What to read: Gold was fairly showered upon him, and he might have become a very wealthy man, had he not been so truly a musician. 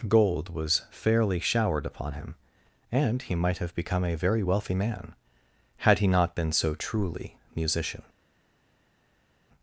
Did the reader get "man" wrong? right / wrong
right